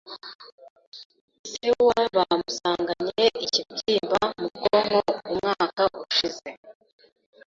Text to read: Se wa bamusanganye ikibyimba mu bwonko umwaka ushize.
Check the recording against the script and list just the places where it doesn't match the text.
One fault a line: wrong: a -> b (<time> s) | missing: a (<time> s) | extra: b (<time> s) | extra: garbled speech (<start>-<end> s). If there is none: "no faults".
no faults